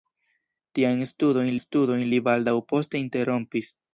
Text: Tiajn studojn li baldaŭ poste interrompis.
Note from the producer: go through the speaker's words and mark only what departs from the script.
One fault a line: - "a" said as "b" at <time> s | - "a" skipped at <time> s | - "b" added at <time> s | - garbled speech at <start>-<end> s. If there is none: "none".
- "studojn" added at 1.6 s